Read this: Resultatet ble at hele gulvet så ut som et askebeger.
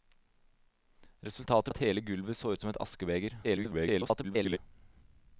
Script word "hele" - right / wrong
right